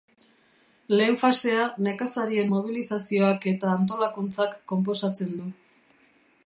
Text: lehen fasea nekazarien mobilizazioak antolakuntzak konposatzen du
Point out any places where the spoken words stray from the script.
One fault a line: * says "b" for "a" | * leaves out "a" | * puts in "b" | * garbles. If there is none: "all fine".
* puts in "eta"